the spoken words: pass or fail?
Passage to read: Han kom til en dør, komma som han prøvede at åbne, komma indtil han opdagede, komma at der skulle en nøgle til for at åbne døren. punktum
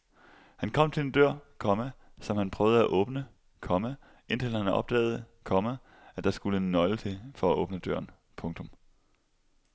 pass